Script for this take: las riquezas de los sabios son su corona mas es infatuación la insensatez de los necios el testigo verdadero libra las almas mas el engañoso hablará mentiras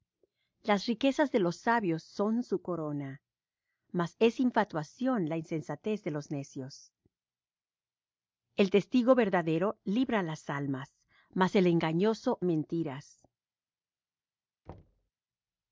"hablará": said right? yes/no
no